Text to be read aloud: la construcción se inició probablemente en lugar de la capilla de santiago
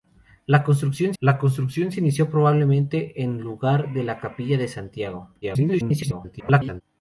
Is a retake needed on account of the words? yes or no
yes